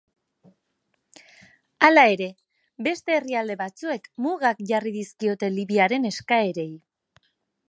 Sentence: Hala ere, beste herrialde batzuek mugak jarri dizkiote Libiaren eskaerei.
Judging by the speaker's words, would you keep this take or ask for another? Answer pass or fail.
pass